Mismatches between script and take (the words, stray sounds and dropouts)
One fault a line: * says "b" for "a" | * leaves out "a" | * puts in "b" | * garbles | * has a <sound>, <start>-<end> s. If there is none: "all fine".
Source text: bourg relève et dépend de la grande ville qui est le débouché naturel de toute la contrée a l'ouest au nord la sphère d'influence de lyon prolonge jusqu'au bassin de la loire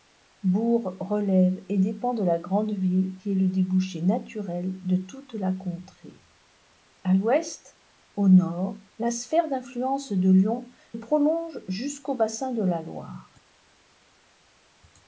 all fine